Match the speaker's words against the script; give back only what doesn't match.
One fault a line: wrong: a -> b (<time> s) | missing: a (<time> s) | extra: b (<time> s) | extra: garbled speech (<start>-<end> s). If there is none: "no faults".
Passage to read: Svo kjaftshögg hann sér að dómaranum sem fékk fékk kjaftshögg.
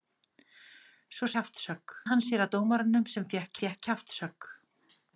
no faults